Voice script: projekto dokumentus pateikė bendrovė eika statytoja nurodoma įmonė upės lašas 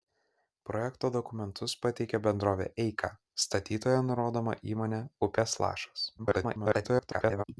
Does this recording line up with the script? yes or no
no